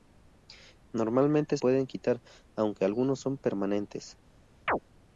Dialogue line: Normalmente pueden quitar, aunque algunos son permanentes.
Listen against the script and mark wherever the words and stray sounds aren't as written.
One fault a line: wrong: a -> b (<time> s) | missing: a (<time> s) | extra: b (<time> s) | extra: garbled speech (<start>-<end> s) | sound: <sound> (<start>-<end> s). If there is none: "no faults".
sound: chirp (4.7-4.8 s)